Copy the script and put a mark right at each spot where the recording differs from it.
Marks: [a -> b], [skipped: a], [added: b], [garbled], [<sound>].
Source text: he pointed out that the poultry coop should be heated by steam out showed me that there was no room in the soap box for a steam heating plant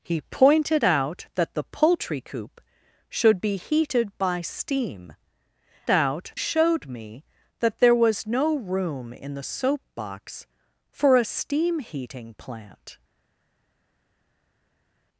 he pointed out that the poultry coop should be heated by steam out showed me that there was no room in the soap box for a steam heating plant